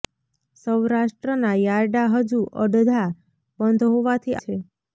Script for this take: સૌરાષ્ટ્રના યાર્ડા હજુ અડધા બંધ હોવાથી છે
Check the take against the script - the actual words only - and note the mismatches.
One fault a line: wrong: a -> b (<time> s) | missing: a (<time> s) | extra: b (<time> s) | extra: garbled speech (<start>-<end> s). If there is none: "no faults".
no faults